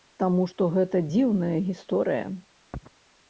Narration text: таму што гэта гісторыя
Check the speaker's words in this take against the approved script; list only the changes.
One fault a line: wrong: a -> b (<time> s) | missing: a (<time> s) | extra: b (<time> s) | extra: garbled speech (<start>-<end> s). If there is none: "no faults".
extra: дзіўная (1.1 s)